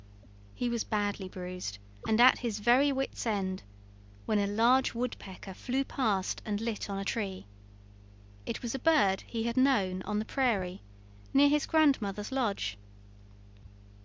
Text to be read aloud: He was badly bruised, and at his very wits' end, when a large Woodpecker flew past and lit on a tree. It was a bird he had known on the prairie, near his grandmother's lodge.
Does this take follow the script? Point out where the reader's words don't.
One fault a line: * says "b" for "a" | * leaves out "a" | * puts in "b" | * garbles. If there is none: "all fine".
all fine